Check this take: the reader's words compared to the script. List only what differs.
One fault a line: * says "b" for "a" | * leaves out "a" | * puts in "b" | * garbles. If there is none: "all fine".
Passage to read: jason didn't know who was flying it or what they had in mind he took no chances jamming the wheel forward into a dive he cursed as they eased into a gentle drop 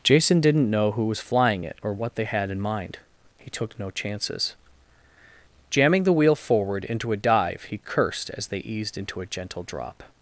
all fine